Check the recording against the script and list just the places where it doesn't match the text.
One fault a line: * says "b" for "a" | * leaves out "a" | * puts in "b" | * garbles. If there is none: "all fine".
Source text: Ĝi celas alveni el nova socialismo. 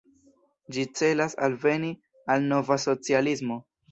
* says "al" for "el"